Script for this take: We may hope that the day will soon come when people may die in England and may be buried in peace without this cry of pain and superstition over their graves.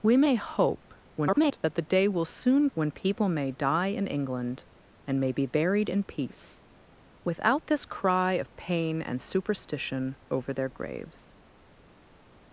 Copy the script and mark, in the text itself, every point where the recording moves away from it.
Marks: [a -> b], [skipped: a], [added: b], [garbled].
We may hope [garbled] that the day will soon [skipped: come] when people may die in England and may be buried in peace without this cry of pain and superstition over their graves.